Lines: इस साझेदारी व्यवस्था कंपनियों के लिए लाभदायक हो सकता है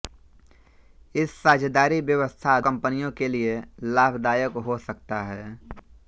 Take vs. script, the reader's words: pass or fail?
pass